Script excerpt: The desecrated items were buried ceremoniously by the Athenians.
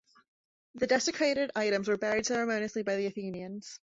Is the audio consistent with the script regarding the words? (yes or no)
yes